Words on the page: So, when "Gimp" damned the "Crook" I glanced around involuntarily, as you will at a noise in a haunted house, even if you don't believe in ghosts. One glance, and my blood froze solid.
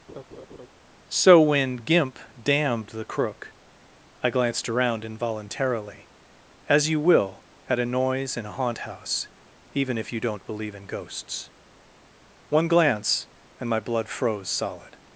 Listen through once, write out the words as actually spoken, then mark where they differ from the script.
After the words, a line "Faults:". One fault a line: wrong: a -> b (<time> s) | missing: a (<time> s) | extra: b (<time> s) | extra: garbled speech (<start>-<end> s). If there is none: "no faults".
So, when "Gimp" damned the "Crook" I glanced around involuntarily, as you will at a noise in a haunt house, even if you don't believe in ghosts. One glance, and my blood froze solid.
Faults:
wrong: haunted -> haunt (8.5 s)